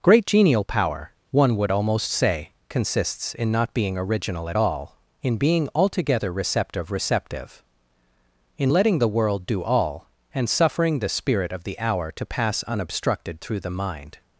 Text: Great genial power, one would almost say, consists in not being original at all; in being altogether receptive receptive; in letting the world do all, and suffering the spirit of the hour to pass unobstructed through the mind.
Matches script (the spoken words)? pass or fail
pass